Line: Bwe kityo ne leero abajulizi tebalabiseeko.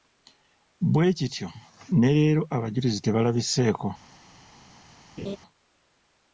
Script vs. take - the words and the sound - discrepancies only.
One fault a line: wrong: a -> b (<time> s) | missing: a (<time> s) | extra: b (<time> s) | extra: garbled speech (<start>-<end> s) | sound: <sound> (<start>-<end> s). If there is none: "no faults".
sound: laugh (5.2-5.4 s)